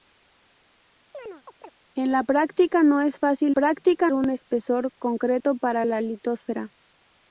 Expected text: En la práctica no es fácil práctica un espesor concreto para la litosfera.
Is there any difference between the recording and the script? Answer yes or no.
no